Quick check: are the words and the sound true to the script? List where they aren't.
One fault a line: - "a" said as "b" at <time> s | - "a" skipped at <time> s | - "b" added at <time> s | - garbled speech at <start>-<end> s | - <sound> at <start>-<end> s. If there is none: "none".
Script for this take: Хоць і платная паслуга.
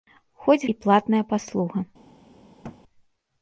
- thud at 2.6-2.8 s